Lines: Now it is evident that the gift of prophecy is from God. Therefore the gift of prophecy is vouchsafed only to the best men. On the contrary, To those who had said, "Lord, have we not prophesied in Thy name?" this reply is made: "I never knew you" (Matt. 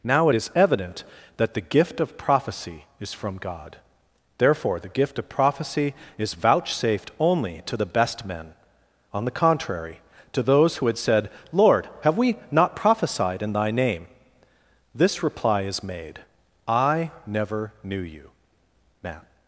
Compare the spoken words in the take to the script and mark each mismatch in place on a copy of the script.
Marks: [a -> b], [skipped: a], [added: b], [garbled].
Now it is evident that the gift of prophecy is from God. Therefore the gift of prophecy is vouchsafed only to the best men. On the contrary, To those who had said, "Lord, have we not prophesied in Thy name?" this reply is made: "I never knew you" (Matt.